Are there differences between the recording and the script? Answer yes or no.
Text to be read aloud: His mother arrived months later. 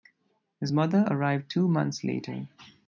yes